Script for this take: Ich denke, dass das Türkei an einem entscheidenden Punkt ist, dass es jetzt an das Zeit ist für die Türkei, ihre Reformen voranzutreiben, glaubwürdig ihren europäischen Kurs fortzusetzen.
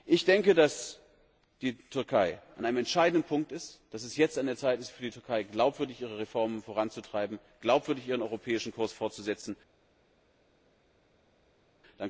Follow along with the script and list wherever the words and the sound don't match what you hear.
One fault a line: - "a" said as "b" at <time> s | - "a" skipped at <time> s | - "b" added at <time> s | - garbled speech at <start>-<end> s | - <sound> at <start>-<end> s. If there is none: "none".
- "das" said as "die" at 1.6 s
- "das" said as "der" at 4.5 s
- "glaubwürdig" added at 5.4 s